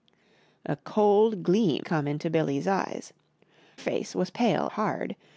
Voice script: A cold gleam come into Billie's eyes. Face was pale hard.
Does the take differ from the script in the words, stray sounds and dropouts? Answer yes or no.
no